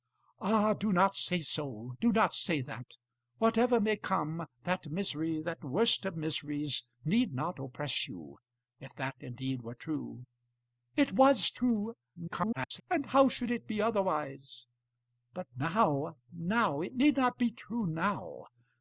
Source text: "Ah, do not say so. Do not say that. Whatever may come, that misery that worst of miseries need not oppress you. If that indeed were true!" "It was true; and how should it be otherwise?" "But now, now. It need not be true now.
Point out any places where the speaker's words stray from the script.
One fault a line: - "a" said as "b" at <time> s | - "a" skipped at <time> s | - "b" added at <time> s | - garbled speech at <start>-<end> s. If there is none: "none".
- garbled speech at 12.2-12.8 s